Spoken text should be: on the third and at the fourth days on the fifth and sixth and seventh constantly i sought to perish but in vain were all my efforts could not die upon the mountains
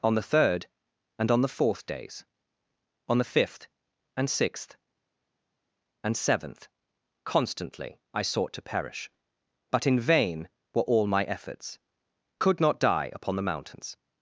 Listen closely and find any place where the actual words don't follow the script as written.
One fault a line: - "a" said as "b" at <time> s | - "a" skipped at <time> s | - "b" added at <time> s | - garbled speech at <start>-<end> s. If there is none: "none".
- "at" said as "on" at 1.3 s